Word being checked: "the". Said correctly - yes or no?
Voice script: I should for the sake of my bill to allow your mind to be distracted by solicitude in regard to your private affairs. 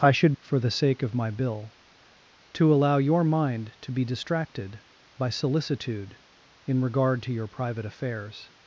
yes